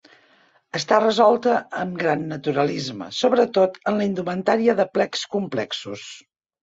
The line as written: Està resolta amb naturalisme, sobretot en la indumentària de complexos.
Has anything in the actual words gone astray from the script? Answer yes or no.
yes